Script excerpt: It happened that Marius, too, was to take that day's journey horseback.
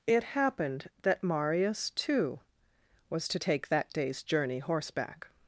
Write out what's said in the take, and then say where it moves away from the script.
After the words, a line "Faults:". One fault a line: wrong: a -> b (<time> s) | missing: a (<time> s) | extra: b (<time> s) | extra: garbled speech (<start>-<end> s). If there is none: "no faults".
It happened that Marius, too, was to take that day's journey horseback.
Faults:
no faults